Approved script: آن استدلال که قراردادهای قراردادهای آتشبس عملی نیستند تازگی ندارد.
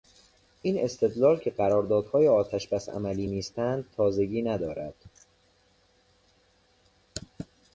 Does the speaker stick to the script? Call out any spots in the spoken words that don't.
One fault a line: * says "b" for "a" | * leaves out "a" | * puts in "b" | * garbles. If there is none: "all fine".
* says "این" for "آن"
* leaves out "قراردادهای"